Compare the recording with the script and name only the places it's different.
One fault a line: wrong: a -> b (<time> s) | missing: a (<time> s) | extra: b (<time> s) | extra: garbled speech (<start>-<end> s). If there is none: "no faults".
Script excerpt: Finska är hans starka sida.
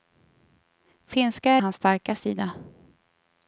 no faults